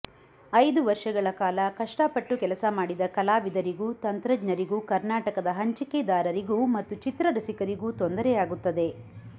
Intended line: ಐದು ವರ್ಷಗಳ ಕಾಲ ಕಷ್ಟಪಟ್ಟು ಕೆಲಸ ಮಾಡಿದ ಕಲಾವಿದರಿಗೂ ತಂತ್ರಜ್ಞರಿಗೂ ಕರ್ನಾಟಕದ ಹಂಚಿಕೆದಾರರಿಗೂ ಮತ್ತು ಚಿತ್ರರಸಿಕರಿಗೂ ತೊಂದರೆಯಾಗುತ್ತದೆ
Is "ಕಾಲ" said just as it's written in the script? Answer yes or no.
yes